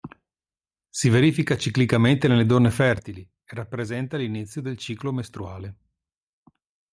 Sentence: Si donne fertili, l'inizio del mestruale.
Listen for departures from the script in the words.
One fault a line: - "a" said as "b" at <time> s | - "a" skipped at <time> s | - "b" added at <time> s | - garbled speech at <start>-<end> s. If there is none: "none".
- "verifica ciclicamente nelle" added at 1.1 s
- "e rappresenta" added at 3.2 s
- "ciclo" added at 4.8 s